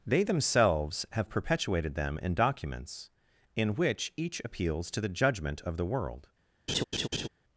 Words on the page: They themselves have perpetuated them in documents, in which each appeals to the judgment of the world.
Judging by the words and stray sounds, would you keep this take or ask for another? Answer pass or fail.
fail